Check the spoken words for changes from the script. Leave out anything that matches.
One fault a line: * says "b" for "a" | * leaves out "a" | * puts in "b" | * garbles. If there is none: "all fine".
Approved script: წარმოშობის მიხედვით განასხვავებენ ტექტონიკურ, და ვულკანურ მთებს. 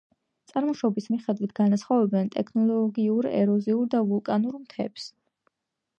* puts in "ეროზიულ"